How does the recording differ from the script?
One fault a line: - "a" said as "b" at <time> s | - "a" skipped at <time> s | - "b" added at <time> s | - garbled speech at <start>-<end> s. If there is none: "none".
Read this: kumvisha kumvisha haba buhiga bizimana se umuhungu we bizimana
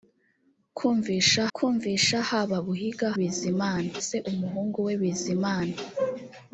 none